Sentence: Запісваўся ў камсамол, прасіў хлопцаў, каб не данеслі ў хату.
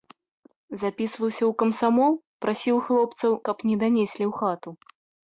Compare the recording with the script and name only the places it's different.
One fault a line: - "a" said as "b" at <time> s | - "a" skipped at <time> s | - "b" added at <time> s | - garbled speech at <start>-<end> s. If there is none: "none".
none